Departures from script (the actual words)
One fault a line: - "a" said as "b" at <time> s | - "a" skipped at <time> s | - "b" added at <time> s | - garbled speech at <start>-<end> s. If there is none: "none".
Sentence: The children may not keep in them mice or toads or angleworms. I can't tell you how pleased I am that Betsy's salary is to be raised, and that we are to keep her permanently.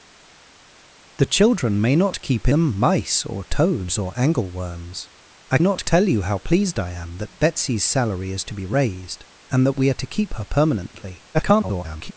- "in" skipped at 2.5 s
- "can't" said as "not" at 5.6 s
- garbled speech at 11.3-12.1 s